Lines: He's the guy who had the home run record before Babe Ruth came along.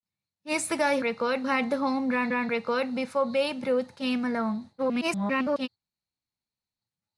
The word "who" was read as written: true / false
false